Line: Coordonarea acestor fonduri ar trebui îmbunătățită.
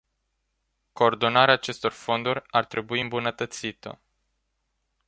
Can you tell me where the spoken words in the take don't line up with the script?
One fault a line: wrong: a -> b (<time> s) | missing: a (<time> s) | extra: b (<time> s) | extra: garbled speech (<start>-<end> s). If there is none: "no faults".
no faults